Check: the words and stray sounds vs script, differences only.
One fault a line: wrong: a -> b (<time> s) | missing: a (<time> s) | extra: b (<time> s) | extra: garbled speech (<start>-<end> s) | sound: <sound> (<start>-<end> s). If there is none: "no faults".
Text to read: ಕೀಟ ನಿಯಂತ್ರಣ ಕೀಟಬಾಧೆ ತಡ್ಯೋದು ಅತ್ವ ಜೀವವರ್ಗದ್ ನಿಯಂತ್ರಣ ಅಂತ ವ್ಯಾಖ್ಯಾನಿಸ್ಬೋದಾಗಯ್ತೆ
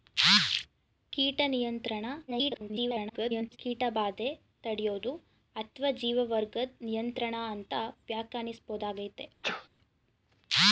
extra: garbled speech (2.3-3.6 s)
sound: sneeze (9.4-9.7 s)